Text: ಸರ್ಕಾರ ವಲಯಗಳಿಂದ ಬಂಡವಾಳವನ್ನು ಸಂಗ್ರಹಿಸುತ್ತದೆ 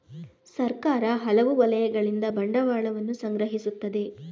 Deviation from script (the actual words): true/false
true